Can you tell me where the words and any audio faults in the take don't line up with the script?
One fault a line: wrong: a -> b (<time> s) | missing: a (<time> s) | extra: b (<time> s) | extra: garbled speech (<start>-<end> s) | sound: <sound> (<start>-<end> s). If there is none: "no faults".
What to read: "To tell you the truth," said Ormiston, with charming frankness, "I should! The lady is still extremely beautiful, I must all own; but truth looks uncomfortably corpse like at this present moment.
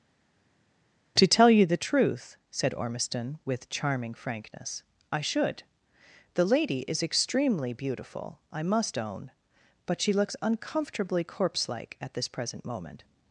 missing: still (7.0 s)
missing: all (9.0 s)
wrong: truth -> she (10.0 s)